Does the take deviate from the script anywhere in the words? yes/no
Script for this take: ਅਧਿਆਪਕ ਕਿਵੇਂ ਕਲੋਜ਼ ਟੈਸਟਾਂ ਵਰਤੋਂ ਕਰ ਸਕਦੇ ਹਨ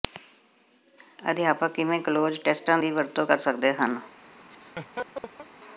yes